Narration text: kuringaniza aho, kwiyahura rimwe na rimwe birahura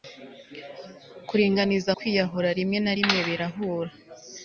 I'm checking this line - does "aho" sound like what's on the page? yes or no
no